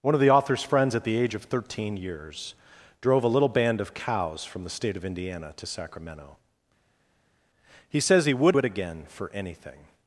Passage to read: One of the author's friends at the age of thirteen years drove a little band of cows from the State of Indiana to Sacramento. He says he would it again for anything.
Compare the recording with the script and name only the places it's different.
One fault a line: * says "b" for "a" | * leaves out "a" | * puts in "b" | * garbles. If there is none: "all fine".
all fine